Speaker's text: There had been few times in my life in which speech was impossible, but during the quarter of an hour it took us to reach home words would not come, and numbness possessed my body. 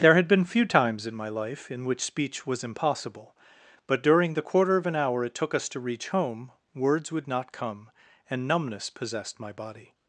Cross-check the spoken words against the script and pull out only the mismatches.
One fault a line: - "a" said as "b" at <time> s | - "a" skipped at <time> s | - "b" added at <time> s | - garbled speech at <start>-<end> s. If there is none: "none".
none